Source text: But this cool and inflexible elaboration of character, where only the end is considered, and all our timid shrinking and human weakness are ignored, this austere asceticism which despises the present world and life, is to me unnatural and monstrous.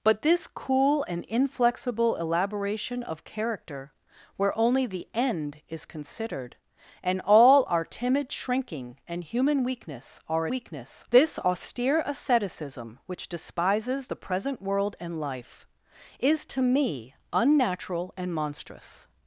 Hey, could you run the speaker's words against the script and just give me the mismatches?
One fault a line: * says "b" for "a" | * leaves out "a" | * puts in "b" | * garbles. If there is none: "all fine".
* says "weakness" for "ignored"